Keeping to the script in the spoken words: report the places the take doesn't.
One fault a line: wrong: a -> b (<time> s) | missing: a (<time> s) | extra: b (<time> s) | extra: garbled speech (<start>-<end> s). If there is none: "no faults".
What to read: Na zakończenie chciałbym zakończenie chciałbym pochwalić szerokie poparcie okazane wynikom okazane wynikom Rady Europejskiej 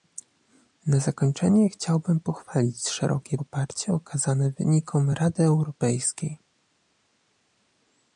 missing: zakończenie chciałbym (2.2 s)
missing: okazane wynikom (5.1 s)